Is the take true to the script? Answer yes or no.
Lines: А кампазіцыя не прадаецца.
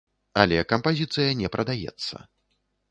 no